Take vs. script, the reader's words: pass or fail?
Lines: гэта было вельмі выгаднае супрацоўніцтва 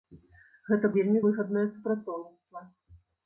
fail